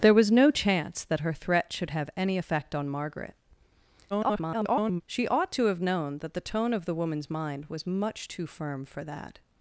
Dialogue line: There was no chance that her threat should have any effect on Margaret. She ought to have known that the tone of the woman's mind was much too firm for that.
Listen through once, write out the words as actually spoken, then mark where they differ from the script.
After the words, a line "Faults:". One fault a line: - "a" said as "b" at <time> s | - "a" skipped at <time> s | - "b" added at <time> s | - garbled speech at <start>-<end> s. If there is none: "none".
There was no chance that her threat should have any effect on Margaret. [garbled] She ought to have known that the tone of the woman's mind was much too firm for that.
Faults:
- garbled speech at 4.1-5.0 s